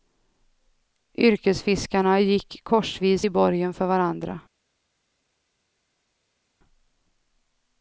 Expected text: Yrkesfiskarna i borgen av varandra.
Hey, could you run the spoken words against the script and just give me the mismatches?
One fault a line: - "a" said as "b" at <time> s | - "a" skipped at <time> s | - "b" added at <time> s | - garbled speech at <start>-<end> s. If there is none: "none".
- "gick korsvis" added at 2.2 s
- "av" said as "för" at 3.7 s